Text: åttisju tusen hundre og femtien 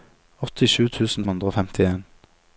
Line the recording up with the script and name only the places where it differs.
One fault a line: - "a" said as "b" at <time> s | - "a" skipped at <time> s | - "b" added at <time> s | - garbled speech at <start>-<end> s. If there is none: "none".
none